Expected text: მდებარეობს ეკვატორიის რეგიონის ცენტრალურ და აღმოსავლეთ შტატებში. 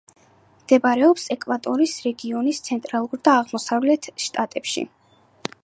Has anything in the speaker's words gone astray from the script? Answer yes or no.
no